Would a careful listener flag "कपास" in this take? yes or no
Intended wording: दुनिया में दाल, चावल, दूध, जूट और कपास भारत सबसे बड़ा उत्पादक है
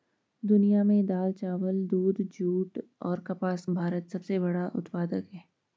no